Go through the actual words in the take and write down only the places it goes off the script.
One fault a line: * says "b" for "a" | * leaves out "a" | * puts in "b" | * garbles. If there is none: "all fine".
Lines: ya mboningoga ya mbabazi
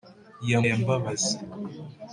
* leaves out "mboningoga"